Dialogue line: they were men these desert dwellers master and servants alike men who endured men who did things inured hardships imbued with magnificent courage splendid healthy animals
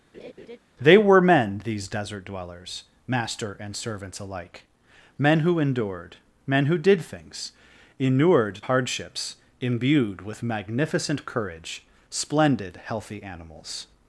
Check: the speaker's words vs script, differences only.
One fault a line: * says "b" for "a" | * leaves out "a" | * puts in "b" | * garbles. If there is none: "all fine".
all fine